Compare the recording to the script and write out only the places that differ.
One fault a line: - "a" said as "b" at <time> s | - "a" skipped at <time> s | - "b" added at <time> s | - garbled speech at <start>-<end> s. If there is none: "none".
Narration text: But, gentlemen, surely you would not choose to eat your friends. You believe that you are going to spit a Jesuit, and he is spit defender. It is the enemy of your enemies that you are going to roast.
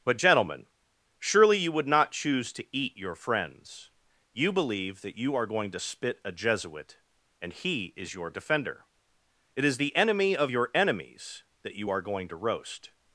- "spit" said as "your" at 8.1 s